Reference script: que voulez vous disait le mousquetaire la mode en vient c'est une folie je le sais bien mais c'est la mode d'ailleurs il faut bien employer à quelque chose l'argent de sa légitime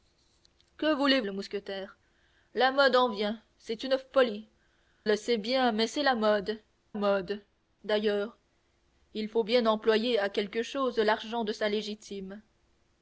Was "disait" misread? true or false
true